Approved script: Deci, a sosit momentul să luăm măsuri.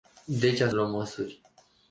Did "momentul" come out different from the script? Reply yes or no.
yes